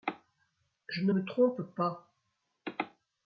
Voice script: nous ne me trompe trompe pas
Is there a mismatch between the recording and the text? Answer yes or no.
yes